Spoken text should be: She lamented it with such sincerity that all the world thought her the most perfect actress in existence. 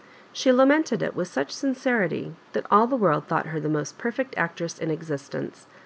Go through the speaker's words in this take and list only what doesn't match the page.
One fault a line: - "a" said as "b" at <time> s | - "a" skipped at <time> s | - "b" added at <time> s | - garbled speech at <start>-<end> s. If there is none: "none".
none